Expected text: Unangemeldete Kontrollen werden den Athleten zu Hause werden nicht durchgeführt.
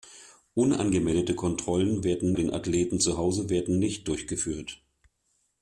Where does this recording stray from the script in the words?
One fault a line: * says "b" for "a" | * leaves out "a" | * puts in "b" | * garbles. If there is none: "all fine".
all fine